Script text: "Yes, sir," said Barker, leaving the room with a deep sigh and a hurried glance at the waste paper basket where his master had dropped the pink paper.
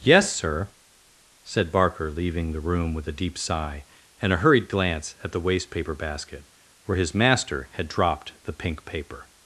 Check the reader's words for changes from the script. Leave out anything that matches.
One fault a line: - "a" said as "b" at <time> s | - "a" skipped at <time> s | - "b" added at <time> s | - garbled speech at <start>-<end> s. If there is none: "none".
none